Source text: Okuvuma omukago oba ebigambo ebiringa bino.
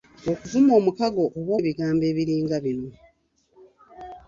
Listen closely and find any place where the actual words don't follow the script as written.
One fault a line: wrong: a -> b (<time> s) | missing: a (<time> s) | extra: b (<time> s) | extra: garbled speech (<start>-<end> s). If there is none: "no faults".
no faults